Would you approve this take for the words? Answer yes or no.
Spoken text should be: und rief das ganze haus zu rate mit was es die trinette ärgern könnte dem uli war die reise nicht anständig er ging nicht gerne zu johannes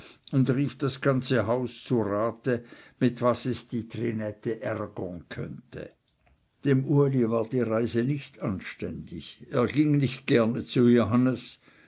yes